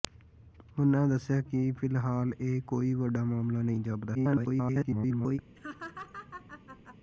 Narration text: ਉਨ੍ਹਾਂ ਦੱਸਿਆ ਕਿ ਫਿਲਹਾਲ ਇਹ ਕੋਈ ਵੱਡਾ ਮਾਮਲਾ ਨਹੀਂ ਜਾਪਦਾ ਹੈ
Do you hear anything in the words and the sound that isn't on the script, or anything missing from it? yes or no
yes